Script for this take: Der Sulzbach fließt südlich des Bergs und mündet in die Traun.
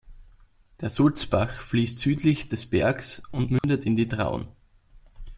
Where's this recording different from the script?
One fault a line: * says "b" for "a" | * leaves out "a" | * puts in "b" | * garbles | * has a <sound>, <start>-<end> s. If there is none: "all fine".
* has a dropout, 3.6-3.6 s